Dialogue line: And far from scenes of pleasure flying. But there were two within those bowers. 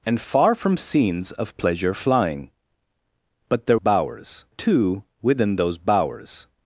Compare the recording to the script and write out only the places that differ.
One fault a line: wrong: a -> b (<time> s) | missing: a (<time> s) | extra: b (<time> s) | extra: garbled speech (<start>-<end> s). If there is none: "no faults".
wrong: were -> bowers (3.7 s)